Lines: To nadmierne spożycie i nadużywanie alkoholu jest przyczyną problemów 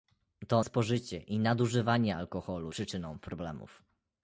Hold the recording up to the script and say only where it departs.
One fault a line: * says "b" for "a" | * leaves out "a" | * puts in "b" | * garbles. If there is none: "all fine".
* leaves out "nadmierne"
* leaves out "jest"